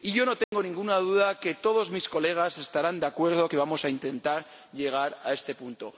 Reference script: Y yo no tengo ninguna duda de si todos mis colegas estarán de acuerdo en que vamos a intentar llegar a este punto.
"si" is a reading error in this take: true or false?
true